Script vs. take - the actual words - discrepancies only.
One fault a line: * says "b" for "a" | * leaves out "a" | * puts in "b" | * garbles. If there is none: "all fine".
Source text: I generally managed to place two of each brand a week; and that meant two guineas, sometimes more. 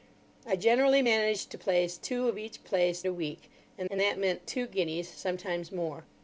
* says "place" for "brand"
* puts in "and"